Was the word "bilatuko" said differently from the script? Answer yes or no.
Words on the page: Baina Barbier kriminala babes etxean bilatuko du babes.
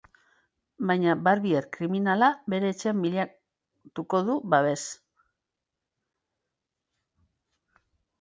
no